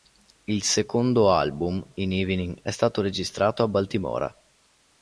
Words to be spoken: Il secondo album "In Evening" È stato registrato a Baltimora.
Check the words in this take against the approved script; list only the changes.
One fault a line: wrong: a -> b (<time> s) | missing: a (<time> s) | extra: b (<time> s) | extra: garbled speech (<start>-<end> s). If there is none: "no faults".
no faults